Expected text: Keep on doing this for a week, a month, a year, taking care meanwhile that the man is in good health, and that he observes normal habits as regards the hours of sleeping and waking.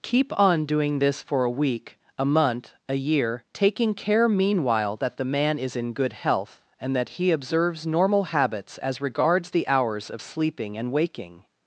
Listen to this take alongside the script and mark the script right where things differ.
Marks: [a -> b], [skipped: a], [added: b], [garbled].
Keep on doing this for a week, a month, a year, taking care meanwhile that the man is in good health, and that he observes normal habits as regards the hours of sleeping and waking.